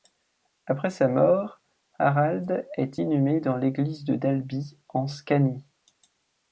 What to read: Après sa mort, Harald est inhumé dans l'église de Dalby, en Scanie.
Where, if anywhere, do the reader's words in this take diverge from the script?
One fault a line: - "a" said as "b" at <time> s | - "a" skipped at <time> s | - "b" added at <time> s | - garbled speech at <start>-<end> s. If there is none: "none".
none